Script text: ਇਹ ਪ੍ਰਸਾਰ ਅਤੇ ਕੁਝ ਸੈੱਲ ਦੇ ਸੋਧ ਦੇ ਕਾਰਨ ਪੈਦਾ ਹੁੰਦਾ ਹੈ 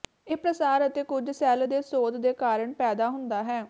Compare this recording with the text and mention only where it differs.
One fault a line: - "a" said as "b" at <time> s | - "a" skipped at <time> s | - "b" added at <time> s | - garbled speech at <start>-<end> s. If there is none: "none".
none